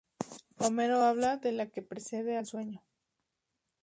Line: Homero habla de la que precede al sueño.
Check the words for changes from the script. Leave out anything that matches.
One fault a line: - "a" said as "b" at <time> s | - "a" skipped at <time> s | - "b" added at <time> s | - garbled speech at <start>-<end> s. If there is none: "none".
none